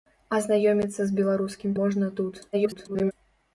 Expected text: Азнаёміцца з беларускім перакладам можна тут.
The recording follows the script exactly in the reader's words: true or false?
false